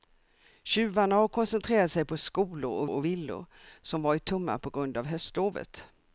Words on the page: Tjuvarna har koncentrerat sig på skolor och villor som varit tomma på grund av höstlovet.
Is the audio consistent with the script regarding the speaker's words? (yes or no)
no